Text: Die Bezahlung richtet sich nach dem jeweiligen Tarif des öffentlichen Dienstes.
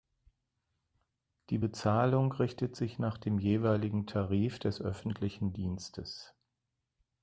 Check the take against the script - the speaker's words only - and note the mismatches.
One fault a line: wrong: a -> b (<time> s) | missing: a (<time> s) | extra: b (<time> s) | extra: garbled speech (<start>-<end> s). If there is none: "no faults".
no faults